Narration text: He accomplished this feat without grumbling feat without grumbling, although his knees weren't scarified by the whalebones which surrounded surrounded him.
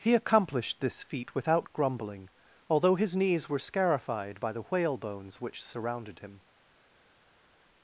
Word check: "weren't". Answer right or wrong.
wrong